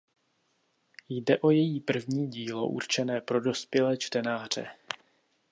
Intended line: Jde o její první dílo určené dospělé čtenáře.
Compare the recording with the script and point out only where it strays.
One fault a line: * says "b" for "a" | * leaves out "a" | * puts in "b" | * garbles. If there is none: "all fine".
* puts in "pro"